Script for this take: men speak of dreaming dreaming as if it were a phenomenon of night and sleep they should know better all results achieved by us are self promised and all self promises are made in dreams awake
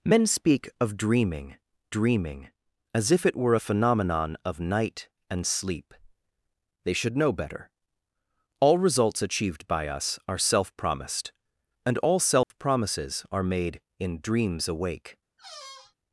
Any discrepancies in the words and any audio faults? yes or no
yes